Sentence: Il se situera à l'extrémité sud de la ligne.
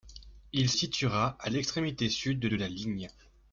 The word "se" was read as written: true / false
false